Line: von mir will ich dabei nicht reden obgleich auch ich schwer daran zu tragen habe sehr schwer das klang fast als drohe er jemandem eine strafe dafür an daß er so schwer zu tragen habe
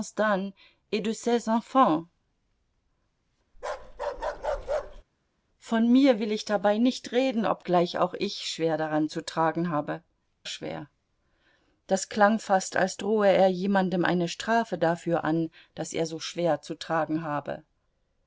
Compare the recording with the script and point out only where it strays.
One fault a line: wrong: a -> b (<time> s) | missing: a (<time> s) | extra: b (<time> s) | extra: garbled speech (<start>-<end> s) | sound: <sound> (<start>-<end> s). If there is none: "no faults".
sound: bark (3.5-5.0 s)
missing: sehr (10.0 s)